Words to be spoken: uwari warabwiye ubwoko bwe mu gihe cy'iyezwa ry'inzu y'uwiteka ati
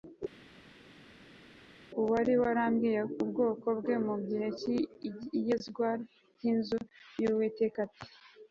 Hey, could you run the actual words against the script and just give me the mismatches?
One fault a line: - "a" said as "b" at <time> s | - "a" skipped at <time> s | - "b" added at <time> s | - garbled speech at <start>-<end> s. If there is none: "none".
none